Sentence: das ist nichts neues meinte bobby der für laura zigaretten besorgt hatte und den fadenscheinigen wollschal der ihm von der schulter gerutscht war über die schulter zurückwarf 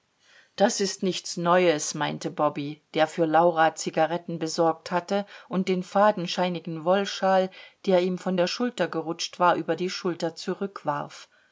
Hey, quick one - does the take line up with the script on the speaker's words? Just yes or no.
yes